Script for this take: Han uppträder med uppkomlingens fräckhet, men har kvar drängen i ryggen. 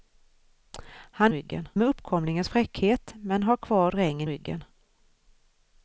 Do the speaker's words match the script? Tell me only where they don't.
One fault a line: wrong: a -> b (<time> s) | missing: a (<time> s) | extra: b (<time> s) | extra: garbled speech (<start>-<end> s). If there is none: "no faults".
wrong: uppträder -> ryggen (1.3 s)
missing: i (4.3 s)